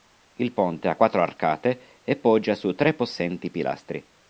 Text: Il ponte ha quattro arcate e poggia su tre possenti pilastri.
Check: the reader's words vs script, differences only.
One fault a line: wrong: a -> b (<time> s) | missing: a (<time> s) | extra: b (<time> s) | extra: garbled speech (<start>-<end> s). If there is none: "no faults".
no faults